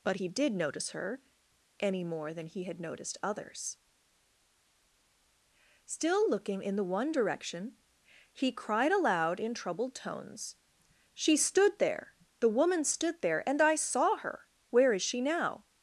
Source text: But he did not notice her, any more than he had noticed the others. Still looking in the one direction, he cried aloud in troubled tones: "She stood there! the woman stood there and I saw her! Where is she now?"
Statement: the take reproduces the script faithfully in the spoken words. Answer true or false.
false